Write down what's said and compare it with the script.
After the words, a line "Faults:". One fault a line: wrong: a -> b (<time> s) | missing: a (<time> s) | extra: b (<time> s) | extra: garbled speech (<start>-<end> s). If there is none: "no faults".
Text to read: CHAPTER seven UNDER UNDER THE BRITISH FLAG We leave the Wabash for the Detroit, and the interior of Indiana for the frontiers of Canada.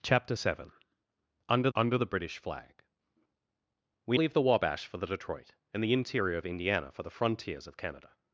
CHAPTER seven UNDER UNDER THE BRITISH FLAG We leave the Wabash for the Detroit, and the interior of Indiana for the frontiers of Canada.
Faults:
no faults